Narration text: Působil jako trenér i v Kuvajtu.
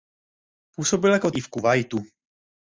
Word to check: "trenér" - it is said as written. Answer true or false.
false